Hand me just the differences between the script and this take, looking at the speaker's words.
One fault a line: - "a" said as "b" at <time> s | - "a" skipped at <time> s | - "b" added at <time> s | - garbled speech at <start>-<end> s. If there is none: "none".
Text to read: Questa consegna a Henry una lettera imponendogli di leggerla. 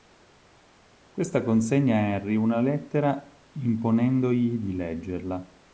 none